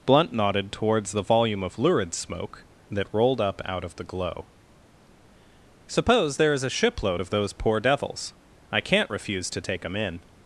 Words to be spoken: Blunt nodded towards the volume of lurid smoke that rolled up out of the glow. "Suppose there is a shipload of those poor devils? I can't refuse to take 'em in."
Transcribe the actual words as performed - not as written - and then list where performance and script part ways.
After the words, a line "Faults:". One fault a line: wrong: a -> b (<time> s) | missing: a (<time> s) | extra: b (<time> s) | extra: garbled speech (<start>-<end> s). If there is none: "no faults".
Blunt nodded towards the volume of lurid smoke that rolled up out of the glow. "Suppose there is a shipload of those poor devils? I can't refuse to take 'em in."
Faults:
no faults